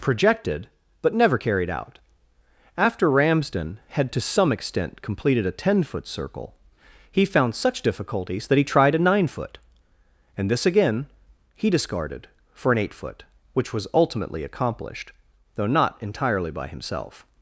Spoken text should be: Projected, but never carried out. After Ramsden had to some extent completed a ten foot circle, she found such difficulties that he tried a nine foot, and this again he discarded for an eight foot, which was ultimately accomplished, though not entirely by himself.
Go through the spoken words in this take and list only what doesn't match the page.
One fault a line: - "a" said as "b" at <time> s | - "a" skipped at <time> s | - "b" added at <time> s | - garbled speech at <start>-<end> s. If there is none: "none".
- "she" said as "he" at 7.1 s